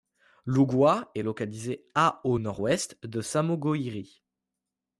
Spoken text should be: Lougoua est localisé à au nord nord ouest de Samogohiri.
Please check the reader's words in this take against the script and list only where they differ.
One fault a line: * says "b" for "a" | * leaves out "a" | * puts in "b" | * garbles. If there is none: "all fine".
* leaves out "nord"